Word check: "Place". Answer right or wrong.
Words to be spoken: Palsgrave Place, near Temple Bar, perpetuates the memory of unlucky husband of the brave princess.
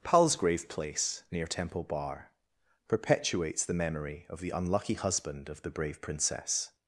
right